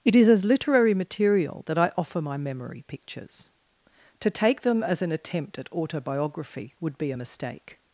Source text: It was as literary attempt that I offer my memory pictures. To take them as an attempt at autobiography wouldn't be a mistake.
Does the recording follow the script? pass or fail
fail